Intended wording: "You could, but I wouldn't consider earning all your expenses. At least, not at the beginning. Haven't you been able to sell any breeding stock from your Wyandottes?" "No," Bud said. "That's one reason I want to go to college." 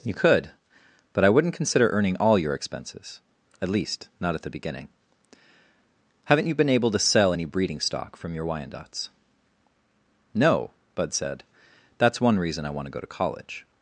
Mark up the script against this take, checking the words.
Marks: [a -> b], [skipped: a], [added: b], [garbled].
"You could, but I wouldn't consider earning all your expenses. At least, not at the beginning. Haven't you been able to sell any breeding stock from your Wyandottes?" "No," Bud said. "That's one reason I want to go to college."